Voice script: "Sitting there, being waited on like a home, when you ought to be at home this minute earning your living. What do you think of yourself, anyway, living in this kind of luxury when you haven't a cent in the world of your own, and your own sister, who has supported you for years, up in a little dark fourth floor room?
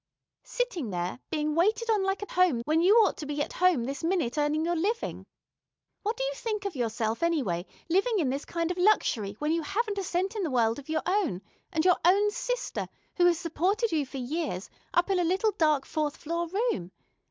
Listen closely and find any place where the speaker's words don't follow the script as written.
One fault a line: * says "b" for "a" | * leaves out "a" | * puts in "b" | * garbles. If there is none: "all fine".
all fine